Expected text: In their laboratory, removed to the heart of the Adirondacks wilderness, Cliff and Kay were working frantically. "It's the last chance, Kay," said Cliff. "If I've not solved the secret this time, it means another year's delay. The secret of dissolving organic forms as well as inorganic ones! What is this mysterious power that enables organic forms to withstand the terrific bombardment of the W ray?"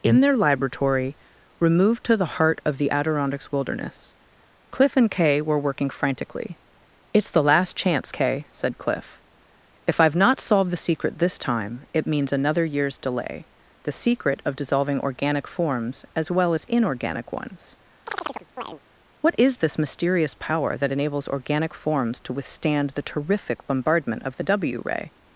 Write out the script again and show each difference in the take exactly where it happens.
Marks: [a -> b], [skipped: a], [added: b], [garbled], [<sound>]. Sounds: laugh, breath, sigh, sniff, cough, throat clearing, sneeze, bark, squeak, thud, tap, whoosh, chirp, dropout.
In their laboratory, removed to the heart of the Adirondacks wilderness, Cliff and Kay were working frantically. "It's the last chance, Kay," said Cliff. "If I've not solved the secret this time, it means another year's delay. The secret of dissolving organic forms as well as inorganic ones! [chirp] What is this mysterious power that enables organic forms to withstand the terrific bombardment of the W ray?"